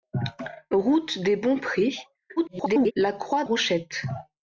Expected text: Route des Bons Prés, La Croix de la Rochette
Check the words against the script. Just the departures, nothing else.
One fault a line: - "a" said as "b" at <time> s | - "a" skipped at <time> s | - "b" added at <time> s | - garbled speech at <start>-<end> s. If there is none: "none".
- garbled speech at 2.4-2.9 s
- "de la" skipped at 3.4 s